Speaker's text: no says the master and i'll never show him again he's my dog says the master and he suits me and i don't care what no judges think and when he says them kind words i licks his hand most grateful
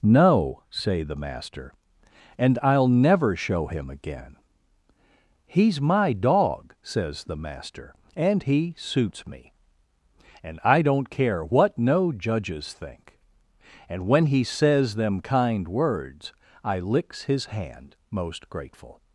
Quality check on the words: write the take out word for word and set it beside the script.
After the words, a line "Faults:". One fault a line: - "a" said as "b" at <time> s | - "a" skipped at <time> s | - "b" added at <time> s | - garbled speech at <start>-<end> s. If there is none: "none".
no say the master and i'll never show him again he's my dog says the master and he suits me and i don't care what no judges think and when he says them kind words i licks his hand most grateful
Faults:
- "says" said as "say" at 0.7 s